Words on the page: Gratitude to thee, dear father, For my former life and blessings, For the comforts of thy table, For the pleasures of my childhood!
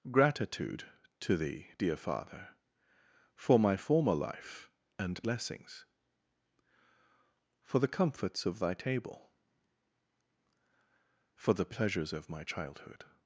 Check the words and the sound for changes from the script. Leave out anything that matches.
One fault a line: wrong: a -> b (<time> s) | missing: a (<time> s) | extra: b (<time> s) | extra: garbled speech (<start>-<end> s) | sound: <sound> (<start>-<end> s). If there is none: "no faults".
no faults